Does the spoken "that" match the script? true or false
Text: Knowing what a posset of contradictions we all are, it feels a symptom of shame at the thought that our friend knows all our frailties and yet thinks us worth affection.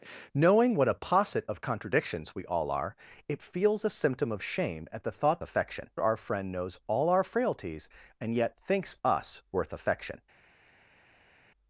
false